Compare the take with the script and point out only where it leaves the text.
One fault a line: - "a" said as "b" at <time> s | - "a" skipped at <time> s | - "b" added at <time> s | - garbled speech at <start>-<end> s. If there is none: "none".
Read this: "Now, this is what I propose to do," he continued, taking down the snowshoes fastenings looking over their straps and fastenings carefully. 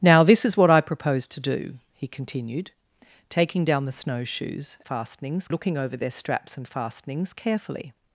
none